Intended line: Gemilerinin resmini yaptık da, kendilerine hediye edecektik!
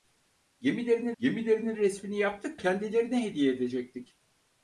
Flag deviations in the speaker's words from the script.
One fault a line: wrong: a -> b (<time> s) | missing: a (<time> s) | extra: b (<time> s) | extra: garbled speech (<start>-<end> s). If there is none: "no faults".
extra: gemilerinin (1.2 s)
missing: da (2.6 s)